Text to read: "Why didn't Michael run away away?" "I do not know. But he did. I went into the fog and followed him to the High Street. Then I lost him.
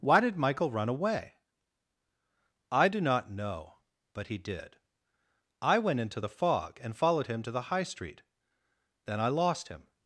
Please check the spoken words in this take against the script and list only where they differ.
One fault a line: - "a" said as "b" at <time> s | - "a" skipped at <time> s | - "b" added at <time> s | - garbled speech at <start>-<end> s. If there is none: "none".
- "didn't" said as "did" at 0.2 s
- "away" skipped at 1.4 s